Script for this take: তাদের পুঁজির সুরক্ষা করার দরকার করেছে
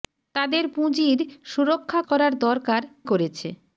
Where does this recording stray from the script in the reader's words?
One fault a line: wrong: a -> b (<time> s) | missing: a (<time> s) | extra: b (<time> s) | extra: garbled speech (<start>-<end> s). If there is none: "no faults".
no faults